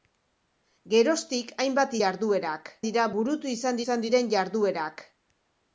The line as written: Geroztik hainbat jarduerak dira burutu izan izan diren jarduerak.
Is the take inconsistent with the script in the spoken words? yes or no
no